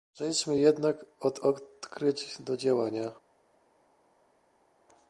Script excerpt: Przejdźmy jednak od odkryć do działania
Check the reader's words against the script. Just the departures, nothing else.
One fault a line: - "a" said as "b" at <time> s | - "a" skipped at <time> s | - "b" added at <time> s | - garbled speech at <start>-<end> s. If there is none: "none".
none